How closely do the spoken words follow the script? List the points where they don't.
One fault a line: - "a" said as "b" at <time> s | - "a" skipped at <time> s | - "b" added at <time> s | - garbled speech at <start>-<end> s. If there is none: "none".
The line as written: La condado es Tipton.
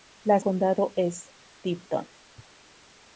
none